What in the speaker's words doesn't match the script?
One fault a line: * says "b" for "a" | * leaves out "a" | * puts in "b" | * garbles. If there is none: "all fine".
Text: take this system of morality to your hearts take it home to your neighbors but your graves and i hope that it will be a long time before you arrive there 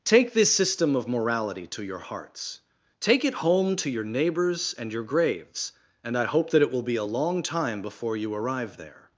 * says "and" for "but"